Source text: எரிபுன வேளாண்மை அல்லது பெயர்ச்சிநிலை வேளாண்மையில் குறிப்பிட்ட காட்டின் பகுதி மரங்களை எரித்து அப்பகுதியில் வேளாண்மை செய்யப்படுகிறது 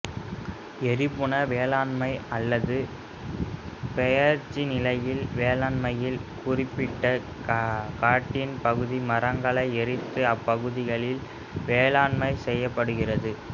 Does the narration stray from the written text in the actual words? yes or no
no